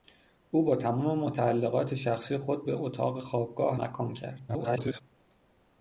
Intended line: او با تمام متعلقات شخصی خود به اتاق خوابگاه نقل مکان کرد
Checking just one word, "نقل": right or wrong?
wrong